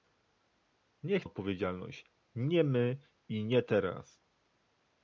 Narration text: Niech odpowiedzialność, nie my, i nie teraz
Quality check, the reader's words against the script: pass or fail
pass